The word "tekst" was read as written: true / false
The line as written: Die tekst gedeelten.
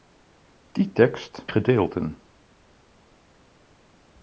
true